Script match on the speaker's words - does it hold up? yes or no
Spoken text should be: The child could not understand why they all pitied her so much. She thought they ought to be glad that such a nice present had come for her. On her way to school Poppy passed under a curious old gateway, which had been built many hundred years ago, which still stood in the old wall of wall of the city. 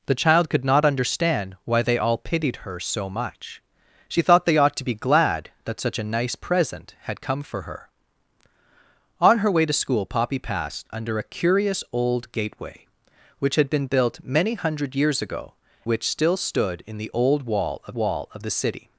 yes